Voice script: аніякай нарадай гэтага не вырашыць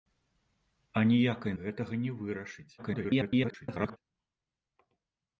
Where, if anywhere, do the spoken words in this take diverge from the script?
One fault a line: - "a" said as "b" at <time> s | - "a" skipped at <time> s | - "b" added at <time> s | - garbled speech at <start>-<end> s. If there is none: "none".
- "нарадай" skipped at 1.5 s
- garbled speech at 2.8-4.0 s